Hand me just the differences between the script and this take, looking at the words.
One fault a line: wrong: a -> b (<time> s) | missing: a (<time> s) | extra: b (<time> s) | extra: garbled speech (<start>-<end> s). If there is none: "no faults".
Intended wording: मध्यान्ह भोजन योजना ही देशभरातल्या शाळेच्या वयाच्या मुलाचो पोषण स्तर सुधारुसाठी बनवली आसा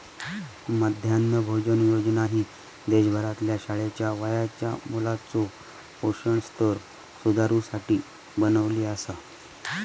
no faults